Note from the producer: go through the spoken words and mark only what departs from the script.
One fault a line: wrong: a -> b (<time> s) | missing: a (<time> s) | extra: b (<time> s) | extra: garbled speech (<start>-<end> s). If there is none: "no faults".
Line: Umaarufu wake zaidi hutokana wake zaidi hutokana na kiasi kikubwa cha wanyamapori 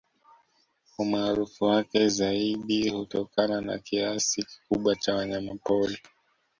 missing: wake zaidi hutokana (3.6 s)